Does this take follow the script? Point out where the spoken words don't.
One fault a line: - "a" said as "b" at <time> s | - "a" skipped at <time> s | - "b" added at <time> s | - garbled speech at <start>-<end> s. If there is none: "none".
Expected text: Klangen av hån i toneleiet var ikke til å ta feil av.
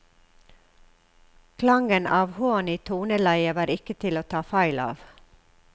none